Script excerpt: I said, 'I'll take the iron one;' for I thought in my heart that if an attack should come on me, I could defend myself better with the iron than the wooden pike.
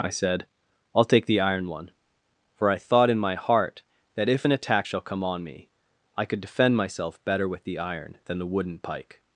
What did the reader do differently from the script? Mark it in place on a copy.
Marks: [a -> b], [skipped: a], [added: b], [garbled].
I said, 'I'll take the iron one;' for I thought in my heart that if an attack [should -> shall] come on me, I could defend myself better with the iron than the wooden pike.